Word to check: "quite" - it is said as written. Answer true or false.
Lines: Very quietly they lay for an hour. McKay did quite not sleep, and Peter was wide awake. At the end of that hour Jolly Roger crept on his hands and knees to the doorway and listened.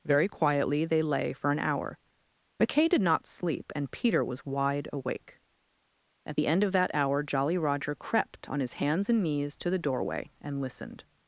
false